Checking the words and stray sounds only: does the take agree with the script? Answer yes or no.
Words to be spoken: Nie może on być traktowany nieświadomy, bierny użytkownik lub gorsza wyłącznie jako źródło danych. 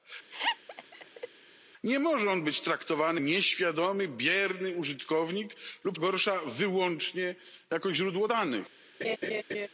no